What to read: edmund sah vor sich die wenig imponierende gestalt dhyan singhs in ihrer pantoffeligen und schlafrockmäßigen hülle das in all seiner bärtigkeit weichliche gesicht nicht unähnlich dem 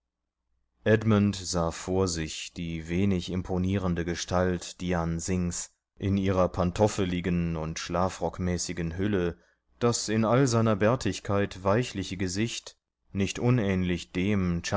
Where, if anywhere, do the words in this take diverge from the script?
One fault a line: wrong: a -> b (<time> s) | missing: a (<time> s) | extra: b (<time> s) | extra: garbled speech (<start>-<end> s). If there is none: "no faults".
no faults